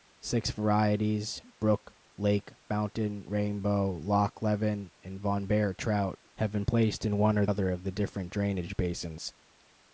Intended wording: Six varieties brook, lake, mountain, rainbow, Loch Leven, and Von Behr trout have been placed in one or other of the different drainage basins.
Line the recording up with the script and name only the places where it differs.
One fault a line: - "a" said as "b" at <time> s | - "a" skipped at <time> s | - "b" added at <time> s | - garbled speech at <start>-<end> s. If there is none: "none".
none